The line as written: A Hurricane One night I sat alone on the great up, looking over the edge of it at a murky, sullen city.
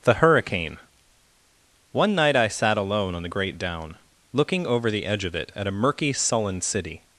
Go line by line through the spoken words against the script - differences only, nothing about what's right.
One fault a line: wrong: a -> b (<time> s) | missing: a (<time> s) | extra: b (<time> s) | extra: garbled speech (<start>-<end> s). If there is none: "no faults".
wrong: A -> The (0.0 s)
wrong: up -> down (3.6 s)